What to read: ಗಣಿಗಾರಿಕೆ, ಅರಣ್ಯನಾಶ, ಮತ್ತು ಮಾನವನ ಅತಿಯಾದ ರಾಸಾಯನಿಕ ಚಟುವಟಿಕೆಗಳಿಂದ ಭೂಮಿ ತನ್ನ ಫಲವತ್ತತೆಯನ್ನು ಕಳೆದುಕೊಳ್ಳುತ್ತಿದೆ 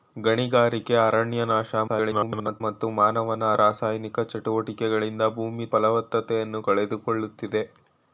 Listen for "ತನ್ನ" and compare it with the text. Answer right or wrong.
wrong